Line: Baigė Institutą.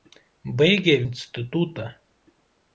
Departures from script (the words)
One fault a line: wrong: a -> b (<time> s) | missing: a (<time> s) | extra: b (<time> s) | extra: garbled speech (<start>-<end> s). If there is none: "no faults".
no faults